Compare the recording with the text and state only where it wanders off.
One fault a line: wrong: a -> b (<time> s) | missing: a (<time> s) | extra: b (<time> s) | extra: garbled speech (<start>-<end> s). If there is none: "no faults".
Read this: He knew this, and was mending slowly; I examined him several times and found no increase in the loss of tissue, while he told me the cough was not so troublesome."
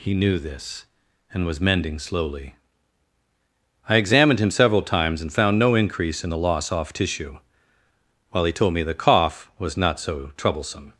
wrong: of -> off (6.7 s)